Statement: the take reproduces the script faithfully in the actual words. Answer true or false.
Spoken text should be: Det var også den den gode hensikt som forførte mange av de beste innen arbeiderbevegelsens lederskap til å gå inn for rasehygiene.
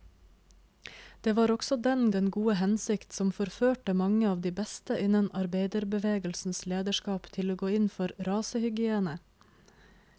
true